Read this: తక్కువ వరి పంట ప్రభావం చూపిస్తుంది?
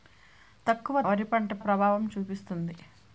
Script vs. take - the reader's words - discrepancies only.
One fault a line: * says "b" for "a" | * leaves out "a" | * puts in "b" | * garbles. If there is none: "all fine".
all fine